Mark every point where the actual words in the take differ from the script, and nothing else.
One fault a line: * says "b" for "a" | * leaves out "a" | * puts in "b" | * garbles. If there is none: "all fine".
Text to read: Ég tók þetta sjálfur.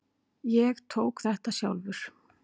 all fine